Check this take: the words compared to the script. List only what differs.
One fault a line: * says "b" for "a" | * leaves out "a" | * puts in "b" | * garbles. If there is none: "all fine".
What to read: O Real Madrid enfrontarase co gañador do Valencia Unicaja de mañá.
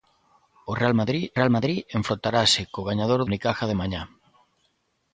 * puts in "Real Madrid"
* leaves out "do Valencia"